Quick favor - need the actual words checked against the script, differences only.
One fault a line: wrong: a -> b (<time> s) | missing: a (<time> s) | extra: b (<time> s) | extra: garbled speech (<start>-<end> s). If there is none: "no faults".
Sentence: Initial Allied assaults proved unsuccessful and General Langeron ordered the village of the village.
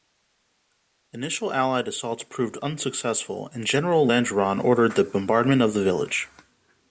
wrong: village -> bombardment (5.0 s)